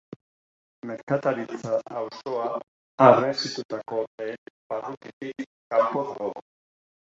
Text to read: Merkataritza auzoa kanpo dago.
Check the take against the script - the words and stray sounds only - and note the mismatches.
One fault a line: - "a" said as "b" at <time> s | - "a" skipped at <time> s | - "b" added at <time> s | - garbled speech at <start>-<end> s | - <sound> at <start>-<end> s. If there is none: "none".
- "harresitutako lehen barrutitik" added at 3.1 s